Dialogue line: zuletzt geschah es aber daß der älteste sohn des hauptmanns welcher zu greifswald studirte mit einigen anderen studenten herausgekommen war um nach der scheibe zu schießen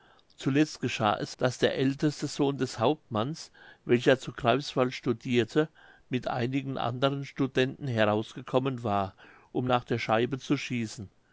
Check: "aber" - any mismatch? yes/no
yes